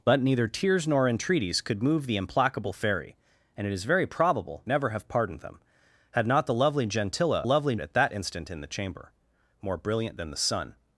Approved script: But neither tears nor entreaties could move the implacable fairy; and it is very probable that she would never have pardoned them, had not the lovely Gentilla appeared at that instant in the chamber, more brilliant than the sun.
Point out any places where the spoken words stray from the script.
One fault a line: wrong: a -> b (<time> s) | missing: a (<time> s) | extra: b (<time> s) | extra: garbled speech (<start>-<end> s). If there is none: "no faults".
missing: that she would (4.6 s)
wrong: appeared -> lovely (7.4 s)